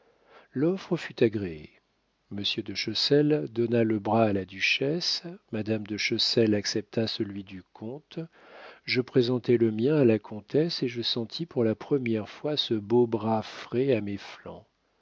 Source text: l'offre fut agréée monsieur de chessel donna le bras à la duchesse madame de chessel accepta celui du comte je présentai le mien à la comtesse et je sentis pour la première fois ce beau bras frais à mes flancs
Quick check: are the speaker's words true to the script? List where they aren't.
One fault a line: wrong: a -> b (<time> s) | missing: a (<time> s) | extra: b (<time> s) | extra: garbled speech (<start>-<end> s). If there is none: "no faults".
no faults